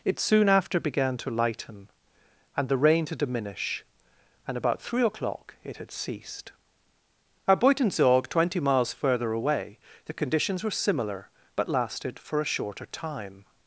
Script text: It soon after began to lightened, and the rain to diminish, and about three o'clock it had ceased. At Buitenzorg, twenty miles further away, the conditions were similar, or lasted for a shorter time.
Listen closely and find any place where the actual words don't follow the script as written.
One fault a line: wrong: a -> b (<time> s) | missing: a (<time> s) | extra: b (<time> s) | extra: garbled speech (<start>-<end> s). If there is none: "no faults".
wrong: lightened -> lighten (1.3 s)
wrong: or -> but (11.6 s)